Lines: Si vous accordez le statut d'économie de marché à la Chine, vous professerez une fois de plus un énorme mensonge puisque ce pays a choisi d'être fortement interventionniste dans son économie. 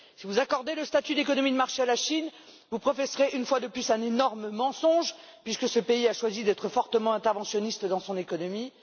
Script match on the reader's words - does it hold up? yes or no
yes